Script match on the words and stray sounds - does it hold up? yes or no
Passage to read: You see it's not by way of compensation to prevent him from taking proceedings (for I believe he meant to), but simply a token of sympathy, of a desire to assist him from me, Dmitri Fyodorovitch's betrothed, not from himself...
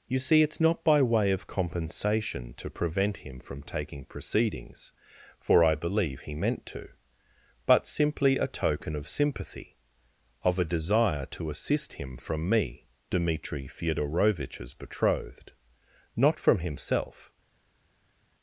yes